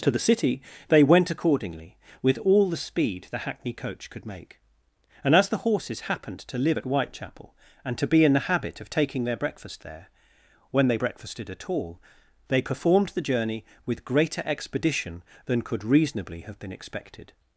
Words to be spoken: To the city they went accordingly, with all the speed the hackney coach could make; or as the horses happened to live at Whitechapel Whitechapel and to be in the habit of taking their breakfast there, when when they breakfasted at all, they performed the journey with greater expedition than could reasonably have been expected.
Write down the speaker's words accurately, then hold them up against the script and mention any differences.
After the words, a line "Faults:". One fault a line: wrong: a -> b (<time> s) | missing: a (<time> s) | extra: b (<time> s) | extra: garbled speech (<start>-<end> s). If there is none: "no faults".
To the city they went accordingly, with all the speed the hackney coach could make; and as the horses happened to live at Whitechapel and to be in the habit of taking their breakfast there, when they breakfasted at all, they performed the journey with greater expedition than could reasonably have been expected.
Faults:
wrong: or -> and (5.2 s)
missing: Whitechapel (7.5 s)
missing: when (10.9 s)